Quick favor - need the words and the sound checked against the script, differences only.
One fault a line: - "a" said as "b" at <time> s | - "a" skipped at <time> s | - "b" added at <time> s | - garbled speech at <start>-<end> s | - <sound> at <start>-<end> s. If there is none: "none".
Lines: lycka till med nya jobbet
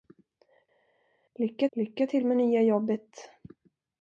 - "lycka" added at 1.7 s